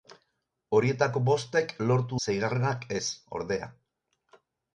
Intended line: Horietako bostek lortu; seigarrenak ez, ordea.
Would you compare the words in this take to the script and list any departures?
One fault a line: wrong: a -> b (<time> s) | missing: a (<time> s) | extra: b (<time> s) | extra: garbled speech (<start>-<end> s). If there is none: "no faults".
no faults